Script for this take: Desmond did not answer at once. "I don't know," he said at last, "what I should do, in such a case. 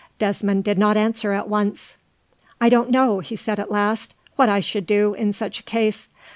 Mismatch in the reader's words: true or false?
false